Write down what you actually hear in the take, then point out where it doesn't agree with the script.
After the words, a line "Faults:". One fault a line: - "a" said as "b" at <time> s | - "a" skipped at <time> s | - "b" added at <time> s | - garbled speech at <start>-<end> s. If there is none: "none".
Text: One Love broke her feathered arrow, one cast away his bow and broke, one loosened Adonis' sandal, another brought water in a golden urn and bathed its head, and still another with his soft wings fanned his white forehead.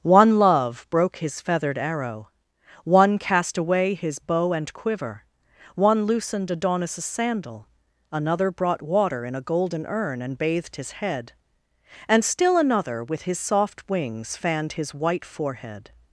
One Love broke his feathered arrow, one cast away his bow and quiver, one loosened Adonis' sandal, another brought water in a golden urn and bathed his head, and still another with his soft wings fanned his white forehead.
Faults:
- "her" said as "his" at 1.2 s
- "broke" said as "quiver" at 4.7 s
- "its" said as "his" at 10.8 s